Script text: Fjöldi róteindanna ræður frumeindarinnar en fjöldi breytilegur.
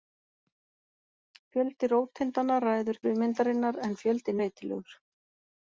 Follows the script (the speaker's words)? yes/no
yes